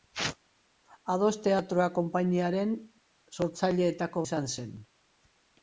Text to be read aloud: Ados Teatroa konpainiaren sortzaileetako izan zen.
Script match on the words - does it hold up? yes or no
yes